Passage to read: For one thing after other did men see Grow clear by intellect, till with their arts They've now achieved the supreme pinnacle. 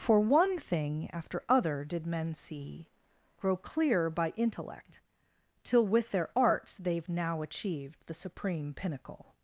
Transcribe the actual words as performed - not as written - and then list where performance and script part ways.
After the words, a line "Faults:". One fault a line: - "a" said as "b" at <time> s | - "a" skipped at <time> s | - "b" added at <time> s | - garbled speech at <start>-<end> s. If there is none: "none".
For one thing after other did men see Grow clear by intellect, till with their arts They've now achieved the supreme pinnacle.
Faults:
none